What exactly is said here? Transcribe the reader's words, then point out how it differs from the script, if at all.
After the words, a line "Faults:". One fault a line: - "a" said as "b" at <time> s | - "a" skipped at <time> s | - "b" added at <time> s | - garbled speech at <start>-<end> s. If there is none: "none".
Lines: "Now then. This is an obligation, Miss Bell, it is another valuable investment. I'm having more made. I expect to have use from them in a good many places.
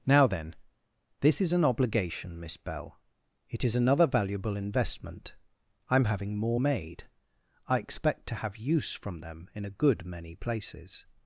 "Now then. This is an obligation, Miss Bell, it is another valuable investment. I'm having more made. I expect to have use from them in a good many places.
Faults:
none